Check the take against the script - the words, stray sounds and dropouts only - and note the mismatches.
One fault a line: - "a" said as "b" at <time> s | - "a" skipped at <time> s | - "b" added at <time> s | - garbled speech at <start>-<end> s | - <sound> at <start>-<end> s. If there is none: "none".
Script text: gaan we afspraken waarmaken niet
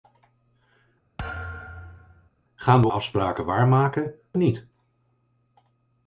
- thud at 1.2-2.3 s